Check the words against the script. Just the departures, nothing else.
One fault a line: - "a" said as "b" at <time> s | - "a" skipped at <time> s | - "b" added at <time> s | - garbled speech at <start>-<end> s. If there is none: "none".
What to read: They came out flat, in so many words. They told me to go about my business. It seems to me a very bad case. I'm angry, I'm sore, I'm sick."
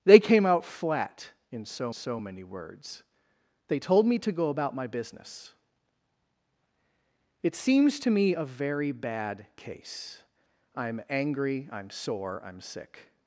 - "so" added at 1.9 s